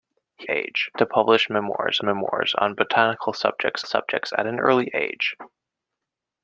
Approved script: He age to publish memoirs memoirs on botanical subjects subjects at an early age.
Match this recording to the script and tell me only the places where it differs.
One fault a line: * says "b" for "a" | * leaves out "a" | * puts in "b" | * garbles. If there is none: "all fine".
all fine